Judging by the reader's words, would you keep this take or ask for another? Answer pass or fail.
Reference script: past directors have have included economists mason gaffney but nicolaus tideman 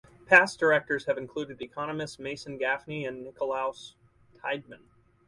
fail